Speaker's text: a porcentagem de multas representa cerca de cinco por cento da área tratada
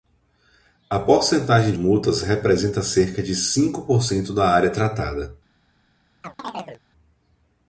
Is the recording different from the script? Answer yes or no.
yes